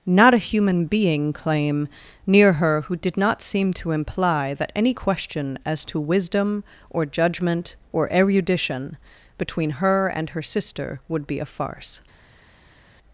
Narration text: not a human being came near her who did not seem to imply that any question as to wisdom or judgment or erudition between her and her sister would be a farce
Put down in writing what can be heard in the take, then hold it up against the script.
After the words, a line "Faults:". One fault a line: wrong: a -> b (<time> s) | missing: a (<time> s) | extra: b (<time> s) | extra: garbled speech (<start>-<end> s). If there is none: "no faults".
not a human being claim near her who did not seem to imply that any question as to wisdom or judgment or erudition between her and her sister would be a farce
Faults:
wrong: came -> claim (1.3 s)